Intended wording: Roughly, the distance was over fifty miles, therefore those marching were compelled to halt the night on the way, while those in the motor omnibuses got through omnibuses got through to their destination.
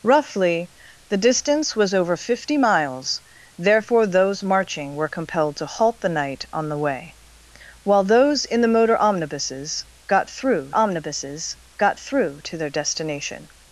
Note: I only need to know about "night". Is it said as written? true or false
true